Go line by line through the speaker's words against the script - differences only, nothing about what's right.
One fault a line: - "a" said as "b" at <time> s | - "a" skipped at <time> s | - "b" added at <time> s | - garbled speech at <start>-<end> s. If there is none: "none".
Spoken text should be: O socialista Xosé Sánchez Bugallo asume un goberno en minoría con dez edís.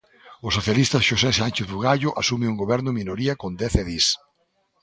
none